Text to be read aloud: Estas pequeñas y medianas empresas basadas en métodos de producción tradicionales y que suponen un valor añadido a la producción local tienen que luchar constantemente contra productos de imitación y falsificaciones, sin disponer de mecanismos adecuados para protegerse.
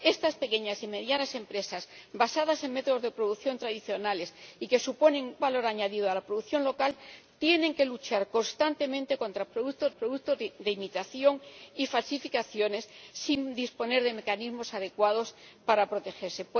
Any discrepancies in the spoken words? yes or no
yes